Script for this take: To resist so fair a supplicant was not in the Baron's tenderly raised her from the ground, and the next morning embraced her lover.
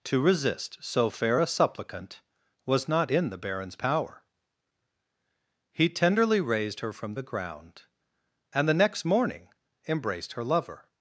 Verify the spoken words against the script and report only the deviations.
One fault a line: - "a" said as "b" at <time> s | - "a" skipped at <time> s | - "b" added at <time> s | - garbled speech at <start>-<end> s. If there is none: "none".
- "power He" added at 3.7 s